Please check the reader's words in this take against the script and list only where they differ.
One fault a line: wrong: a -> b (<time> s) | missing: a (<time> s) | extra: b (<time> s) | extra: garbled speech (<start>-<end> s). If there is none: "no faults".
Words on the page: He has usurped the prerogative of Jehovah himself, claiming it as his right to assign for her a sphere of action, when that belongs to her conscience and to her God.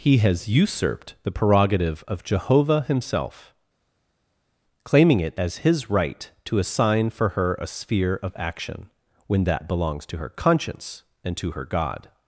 no faults